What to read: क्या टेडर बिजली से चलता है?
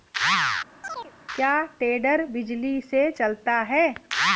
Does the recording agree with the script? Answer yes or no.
yes